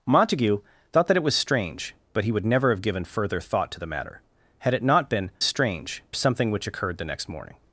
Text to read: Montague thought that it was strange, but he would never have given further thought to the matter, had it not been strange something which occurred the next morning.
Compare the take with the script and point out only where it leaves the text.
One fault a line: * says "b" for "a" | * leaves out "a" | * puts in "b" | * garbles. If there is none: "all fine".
all fine